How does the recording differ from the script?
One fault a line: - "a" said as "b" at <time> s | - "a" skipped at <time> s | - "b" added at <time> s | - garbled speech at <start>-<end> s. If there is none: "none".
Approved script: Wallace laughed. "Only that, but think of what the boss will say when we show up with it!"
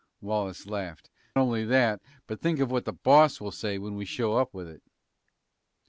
none